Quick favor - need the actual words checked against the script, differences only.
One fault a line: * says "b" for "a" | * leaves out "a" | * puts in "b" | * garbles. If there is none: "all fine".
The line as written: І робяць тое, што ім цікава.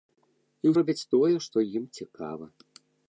all fine